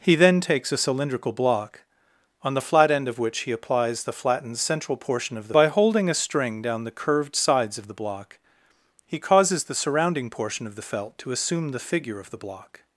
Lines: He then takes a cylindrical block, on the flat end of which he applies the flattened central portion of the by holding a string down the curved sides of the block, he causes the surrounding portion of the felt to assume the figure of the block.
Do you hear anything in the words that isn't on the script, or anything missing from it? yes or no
no